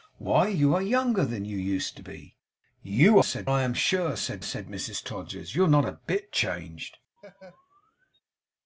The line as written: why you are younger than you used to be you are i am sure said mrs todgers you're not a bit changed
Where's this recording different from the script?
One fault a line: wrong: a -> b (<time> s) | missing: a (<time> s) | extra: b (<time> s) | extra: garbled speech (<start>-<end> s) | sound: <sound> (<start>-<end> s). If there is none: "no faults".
wrong: are -> said (3.2 s)
extra: said (4.4 s)
sound: laugh (7.2-8.2 s)